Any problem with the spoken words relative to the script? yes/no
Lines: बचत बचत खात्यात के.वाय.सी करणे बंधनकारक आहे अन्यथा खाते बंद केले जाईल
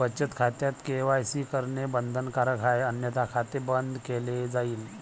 yes